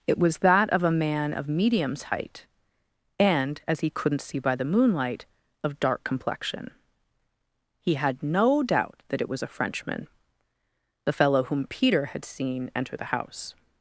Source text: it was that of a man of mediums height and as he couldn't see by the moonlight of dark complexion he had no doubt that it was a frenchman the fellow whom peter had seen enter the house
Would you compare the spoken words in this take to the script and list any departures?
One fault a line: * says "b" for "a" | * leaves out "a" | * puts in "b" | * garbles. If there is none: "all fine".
all fine